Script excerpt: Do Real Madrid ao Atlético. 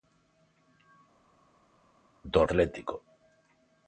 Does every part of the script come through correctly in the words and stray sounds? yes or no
no